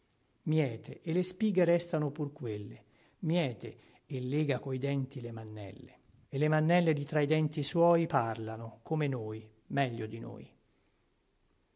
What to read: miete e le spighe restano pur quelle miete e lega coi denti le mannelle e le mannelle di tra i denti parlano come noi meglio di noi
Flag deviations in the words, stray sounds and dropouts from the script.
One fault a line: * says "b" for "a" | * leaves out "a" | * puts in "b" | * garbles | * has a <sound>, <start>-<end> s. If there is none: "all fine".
* puts in "suoi"